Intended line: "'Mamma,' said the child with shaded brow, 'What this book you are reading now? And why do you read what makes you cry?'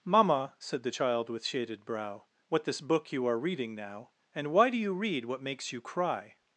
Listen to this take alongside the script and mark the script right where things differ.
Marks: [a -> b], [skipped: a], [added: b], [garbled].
"'Mamma,' said the child with shaded brow, 'What this book you are reading now? And why do you read what makes you cry?'